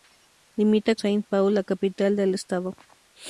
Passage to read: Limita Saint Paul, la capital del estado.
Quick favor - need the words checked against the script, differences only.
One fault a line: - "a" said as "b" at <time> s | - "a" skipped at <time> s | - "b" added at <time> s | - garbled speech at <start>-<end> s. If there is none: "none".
none